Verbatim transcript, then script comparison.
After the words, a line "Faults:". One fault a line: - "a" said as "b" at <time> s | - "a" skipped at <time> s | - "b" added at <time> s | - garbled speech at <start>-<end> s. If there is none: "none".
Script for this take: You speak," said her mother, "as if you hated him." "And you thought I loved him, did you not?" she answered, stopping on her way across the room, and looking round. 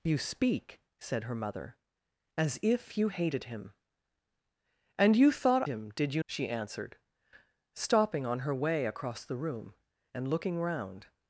You speak," said her mother, "as if you hated him." "And you thought him, did you?" she answered, stopping on her way across the room, and looking round.
Faults:
- "I loved" skipped at 5.6 s
- "not" skipped at 6.2 s